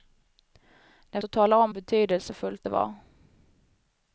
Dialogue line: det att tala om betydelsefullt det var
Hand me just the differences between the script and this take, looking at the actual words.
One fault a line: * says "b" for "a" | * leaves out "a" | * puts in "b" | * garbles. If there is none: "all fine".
all fine